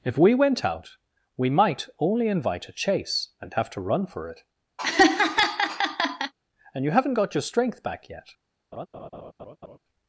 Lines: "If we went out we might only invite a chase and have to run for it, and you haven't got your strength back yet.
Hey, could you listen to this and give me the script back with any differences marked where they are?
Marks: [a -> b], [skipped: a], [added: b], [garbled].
"If we went out we might only invite a chase and have to run for it, and you haven't got your strength back yet.